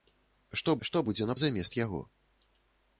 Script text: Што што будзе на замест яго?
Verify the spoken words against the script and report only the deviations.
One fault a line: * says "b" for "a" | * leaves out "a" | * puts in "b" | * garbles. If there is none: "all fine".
all fine